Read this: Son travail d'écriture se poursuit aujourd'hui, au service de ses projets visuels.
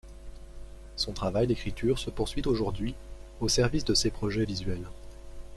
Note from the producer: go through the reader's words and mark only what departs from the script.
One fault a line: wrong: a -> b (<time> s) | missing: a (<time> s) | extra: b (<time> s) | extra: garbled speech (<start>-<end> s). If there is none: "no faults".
no faults